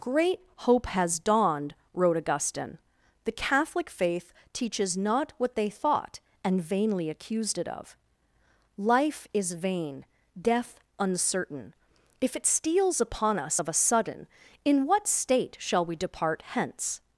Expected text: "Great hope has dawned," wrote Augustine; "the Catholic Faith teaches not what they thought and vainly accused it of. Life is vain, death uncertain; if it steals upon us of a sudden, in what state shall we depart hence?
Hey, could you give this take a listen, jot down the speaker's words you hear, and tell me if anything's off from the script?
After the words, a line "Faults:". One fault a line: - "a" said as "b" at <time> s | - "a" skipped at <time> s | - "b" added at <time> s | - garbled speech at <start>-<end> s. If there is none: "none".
"Great hope has dawned," wrote Augustine; "the Catholic Faith teaches not what they thought and vainly accused it of. Life is vain, death uncertain; if it steals upon us of a sudden, in what state shall we depart hence?
Faults:
none